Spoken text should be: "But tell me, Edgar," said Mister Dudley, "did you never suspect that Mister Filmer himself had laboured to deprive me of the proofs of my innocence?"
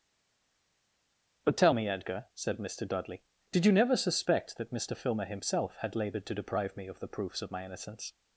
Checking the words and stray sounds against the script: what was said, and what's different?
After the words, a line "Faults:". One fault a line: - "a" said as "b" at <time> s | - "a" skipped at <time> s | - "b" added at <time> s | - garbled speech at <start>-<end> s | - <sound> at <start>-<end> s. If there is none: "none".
"But tell me, Edgar," said Mister Dudley, "did you never suspect that Mister Filmer himself had laboured to deprive me of the proofs of my innocence?"
Faults:
none